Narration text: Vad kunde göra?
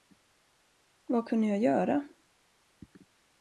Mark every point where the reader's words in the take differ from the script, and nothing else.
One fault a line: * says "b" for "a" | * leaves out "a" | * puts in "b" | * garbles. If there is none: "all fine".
* puts in "jag"